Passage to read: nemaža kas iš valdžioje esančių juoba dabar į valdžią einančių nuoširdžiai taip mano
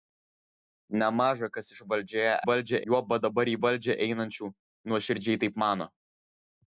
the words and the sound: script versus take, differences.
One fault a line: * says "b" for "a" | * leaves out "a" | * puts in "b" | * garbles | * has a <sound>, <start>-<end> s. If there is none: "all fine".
* says "valdžią" for "esančių"